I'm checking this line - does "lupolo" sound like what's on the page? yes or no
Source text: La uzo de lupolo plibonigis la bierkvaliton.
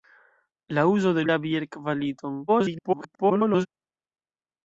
no